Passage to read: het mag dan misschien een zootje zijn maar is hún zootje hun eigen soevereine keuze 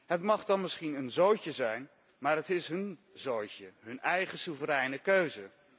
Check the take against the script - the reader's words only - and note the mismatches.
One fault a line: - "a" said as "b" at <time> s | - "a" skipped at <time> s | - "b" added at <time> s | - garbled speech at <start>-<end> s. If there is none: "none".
- "het" added at 2.4 s